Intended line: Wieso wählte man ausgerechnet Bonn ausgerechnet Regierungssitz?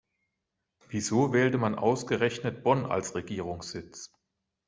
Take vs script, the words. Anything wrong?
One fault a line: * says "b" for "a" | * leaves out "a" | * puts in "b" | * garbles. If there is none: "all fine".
* says "als" for "ausgerechnet"